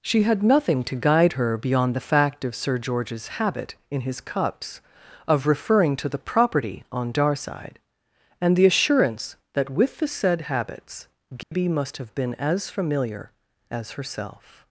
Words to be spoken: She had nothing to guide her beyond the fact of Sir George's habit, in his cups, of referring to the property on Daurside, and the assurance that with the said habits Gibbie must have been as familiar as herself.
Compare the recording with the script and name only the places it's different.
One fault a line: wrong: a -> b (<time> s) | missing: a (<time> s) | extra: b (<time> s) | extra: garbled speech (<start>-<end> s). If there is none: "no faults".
no faults